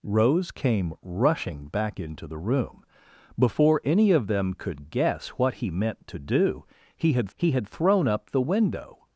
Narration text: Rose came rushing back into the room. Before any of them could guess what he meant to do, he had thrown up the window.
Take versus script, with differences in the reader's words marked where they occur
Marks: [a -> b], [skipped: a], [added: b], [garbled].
Rose came rushing back into the room. Before any of them could guess what he meant to do, he had [added: he had] thrown up the window.